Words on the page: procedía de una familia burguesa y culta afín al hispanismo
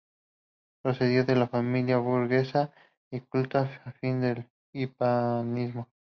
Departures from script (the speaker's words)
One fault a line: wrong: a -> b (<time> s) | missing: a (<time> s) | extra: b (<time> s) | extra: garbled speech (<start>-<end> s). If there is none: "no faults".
no faults